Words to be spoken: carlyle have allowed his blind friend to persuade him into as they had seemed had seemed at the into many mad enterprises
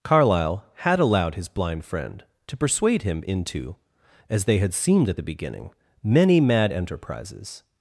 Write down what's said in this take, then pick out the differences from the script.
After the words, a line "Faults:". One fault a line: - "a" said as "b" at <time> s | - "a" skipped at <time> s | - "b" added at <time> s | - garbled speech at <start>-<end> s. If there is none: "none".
carlyle had allowed his blind friend to persuade him into as they had seemed at the beginning many mad enterprises
Faults:
- "have" said as "had" at 0.8 s
- "had seemed" skipped at 5.1 s
- "into" said as "beginning" at 5.2 s